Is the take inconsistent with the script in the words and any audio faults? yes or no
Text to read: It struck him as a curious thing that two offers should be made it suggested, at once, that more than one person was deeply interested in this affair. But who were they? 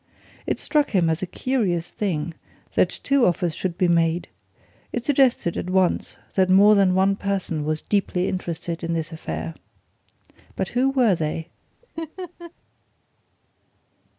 yes